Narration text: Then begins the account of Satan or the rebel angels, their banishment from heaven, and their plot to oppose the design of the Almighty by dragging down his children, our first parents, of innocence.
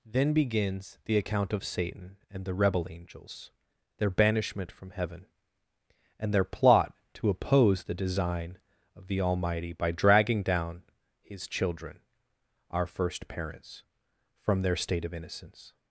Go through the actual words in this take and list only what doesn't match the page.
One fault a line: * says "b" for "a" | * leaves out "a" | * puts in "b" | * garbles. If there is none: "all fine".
* says "and" for "or"
* puts in "from their state"